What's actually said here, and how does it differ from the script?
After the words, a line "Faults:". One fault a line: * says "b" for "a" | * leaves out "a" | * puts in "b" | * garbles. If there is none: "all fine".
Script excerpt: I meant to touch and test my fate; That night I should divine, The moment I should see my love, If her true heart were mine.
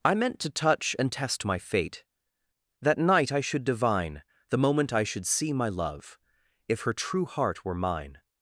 I meant to touch and test my fate; That night I should divine, The moment I should see my love, If her true heart were mine.
Faults:
all fine